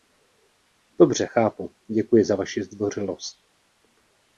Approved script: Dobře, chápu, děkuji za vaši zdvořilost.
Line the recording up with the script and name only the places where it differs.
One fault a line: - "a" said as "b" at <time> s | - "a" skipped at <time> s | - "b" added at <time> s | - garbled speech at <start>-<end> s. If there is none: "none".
none